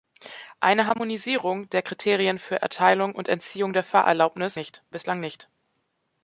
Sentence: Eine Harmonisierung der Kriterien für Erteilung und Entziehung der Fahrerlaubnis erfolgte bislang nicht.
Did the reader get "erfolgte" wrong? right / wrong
wrong